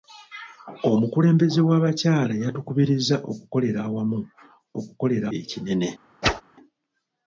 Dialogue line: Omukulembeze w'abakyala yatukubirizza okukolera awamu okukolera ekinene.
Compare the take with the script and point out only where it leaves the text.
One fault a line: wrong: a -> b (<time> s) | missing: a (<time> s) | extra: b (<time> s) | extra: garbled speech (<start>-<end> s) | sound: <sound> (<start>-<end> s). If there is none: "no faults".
sound: whoosh (6.2-6.4 s)